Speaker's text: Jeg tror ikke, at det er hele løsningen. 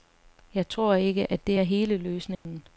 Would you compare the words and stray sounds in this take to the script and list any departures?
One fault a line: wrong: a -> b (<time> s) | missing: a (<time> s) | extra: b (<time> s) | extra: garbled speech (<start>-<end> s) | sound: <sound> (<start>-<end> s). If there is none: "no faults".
sound: dropout (2.4-2.5 s)